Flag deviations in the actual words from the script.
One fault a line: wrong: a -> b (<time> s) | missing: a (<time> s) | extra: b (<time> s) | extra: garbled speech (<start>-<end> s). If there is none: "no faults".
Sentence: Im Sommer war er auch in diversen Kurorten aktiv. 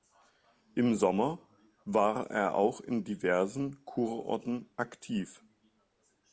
no faults